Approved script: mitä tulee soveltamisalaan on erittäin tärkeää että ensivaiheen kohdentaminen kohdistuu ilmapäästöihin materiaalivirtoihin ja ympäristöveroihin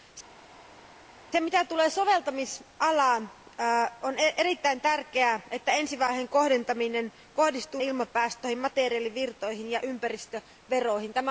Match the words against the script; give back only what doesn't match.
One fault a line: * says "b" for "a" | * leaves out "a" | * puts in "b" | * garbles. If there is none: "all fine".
all fine